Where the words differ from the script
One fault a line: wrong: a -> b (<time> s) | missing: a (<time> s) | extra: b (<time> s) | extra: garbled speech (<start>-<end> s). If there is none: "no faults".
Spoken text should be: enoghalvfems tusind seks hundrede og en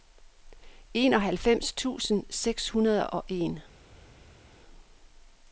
no faults